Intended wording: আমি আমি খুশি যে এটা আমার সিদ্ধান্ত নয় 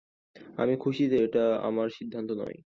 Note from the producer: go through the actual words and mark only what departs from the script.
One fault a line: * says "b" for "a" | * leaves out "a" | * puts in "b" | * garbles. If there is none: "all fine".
* leaves out "আমি"